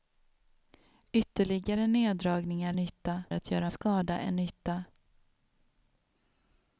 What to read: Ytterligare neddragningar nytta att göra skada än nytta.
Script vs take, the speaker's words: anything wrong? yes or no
no